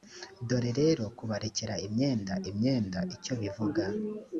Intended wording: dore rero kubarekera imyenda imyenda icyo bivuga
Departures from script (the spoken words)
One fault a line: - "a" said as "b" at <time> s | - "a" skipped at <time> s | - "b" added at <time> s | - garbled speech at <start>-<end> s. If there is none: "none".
none